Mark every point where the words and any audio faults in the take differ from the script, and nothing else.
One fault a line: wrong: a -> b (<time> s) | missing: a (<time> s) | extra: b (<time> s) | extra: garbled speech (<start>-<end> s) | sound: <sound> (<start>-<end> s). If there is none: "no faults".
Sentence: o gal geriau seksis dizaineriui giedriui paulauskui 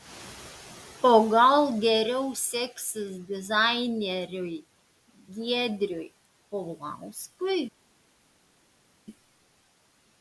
no faults